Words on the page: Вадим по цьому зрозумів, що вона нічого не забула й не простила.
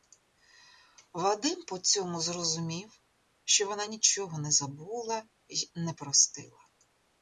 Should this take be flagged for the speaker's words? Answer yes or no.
no